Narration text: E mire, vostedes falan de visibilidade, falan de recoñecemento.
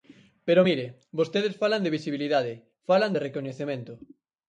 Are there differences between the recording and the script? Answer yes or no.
yes